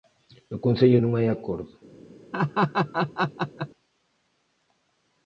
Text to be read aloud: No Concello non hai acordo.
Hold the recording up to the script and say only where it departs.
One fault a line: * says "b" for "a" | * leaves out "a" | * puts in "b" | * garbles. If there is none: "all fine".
all fine